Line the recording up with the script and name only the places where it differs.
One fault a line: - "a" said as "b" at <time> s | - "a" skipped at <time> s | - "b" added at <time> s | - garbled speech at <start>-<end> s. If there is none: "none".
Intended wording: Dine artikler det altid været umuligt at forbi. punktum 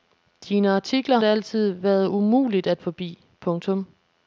none